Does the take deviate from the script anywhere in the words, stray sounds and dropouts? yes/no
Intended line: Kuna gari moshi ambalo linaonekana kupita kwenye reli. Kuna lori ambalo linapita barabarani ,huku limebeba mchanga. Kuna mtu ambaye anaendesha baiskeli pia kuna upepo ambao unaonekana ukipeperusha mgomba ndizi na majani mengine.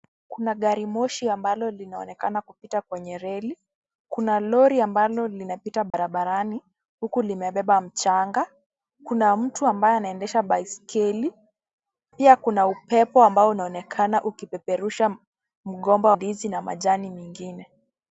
yes